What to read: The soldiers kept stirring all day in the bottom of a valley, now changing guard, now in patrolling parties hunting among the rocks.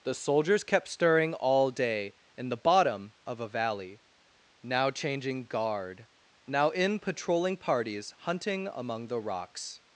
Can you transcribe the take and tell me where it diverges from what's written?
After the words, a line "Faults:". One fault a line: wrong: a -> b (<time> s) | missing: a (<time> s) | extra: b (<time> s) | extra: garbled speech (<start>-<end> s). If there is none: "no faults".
The soldiers kept stirring all day in the bottom of a valley, now changing guard, now in patrolling parties hunting among the rocks.
Faults:
no faults